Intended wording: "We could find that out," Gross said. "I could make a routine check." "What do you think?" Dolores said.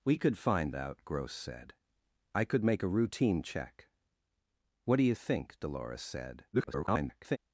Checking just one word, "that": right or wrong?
wrong